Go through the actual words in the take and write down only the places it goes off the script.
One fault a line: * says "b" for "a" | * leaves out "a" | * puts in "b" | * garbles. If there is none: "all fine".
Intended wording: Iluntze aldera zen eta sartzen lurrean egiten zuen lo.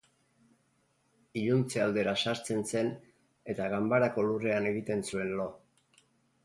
* puts in "sartzen"
* says "ganbarako" for "sartzen"